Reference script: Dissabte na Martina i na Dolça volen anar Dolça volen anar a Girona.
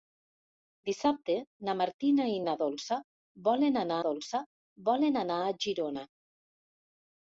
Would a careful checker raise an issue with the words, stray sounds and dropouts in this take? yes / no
no